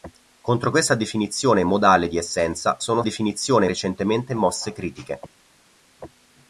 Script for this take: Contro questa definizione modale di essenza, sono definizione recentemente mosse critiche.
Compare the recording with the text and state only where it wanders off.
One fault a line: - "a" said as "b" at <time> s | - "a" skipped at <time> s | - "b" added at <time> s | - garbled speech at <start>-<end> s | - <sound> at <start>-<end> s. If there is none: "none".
none